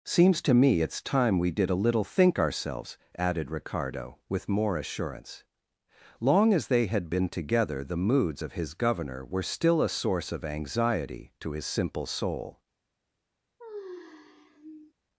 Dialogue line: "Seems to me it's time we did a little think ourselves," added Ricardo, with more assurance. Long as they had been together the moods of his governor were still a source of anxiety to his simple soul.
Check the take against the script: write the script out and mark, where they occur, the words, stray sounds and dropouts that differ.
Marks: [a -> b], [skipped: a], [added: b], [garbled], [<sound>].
"Seems to me it's time we did a little think ourselves," added Ricardo, with more assurance. Long as they had been together the moods of his governor were still a source of anxiety to his simple soul. [sigh]